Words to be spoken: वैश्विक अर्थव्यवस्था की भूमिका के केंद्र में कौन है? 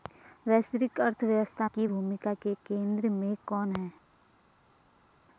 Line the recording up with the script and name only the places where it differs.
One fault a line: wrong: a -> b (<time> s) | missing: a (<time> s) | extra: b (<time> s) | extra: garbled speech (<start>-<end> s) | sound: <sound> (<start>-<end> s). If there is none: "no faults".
no faults